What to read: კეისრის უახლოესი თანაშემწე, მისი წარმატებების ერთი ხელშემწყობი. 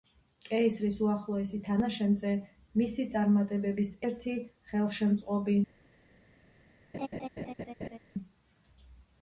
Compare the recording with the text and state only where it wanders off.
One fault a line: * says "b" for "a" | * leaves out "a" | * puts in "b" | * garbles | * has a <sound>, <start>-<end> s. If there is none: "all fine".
* has a laugh, 6.9-8.0 s